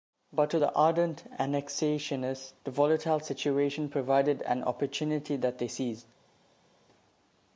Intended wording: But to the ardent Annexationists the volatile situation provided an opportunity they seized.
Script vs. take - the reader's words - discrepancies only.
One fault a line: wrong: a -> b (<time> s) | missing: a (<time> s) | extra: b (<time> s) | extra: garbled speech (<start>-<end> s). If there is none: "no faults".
extra: that (5.3 s)